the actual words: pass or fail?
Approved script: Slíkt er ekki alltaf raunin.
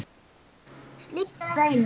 fail